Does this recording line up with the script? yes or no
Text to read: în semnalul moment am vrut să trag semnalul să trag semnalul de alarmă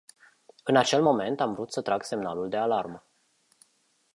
no